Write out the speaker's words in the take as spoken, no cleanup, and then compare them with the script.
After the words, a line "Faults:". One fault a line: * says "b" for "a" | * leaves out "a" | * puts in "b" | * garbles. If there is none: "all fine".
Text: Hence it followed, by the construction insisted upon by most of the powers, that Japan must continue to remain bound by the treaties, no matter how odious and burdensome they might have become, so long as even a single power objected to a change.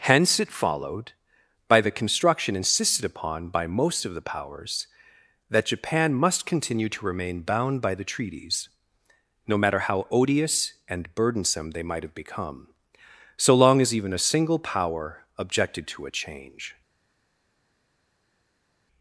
Hence it followed, by the construction insisted upon by most of the powers, that Japan must continue to remain bound by the treaties, no matter how odious and burdensome they might have become, so long as even a single power objected to a change.
Faults:
all fine